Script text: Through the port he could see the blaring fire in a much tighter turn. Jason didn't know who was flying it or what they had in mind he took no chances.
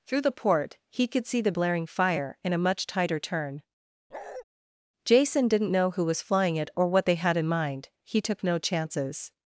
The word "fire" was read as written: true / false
true